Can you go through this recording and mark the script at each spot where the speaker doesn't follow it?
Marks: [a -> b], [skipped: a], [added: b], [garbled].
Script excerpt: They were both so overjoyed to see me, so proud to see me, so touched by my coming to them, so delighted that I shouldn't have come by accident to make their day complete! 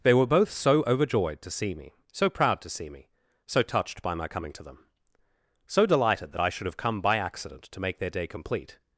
They were both so overjoyed to see me, so proud to see me, so touched by my coming to them, so delighted that I [shouldn't -> should] have come by accident to make their day complete!